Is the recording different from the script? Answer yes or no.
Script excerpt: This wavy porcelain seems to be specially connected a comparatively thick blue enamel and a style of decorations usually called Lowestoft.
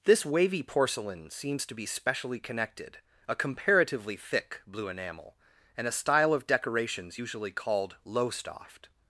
no